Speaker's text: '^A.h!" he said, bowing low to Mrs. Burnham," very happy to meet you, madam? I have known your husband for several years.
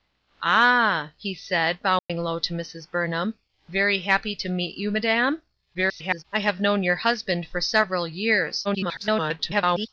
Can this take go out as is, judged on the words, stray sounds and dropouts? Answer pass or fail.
fail